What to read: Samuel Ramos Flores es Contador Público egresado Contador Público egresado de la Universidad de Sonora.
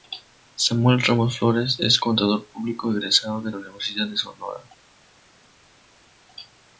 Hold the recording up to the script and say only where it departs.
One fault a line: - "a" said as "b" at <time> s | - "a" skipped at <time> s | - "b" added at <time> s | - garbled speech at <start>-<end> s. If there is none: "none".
- "Contador Público egresado" skipped at 3.4 s